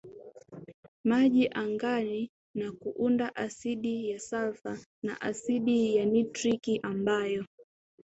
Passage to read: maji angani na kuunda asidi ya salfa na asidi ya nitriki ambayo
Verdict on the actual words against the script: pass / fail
pass